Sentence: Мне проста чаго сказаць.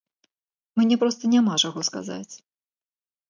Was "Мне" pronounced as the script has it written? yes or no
yes